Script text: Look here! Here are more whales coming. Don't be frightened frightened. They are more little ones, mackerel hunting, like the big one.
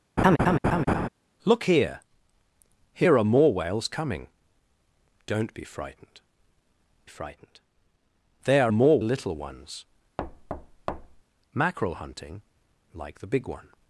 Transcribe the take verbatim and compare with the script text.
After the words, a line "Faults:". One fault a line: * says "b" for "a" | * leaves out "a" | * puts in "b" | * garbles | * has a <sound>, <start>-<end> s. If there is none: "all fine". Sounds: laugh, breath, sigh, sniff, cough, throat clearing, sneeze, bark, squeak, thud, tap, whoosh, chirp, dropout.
Look here! Here are more whales coming. Don't be frightened frightened. They are more little ones, mackerel hunting, like the big one.
Faults:
* has a laugh, 0.2-1.1 s
* has a thud, 10.2-11.2 s